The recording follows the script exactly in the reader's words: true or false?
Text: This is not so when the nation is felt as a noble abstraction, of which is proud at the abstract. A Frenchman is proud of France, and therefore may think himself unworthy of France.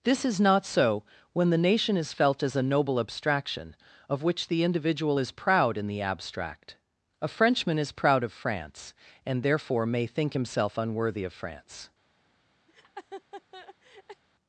false